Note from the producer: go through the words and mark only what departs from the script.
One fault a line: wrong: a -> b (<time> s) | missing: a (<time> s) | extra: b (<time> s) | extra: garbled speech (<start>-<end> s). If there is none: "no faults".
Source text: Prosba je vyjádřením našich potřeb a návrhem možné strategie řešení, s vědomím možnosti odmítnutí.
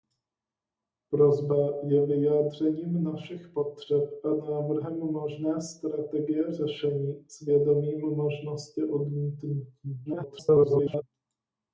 extra: garbled speech (10.0-11.0 s)